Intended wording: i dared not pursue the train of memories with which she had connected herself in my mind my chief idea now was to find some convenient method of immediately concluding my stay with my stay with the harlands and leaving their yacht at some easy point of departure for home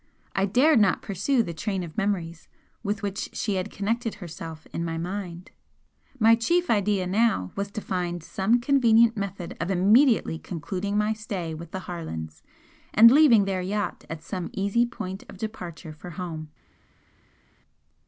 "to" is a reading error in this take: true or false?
false